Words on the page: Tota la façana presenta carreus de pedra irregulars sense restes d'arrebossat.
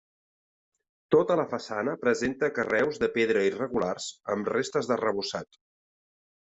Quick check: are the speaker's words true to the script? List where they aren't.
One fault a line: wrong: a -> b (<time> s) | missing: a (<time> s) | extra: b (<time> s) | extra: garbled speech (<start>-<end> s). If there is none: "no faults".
wrong: sense -> amb (4.4 s)